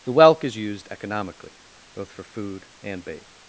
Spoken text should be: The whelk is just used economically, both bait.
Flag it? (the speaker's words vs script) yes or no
yes